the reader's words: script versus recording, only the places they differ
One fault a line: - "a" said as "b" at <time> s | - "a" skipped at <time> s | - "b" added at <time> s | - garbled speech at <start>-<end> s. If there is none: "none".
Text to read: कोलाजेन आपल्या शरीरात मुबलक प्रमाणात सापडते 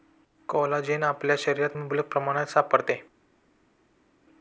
none